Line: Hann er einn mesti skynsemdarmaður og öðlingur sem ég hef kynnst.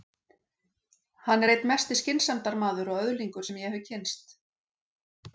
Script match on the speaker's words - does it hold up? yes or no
yes